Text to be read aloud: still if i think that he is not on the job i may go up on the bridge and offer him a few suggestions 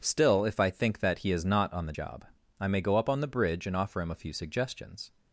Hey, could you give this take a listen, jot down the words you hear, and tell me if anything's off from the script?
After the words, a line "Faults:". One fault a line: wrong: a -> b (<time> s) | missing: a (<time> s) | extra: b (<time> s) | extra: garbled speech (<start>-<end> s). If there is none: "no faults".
still if i think that he is not on the job i may go up on the bridge and offer him a few suggestions
Faults:
no faults